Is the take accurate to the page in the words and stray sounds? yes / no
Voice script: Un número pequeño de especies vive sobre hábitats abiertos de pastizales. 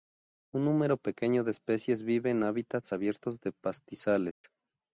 no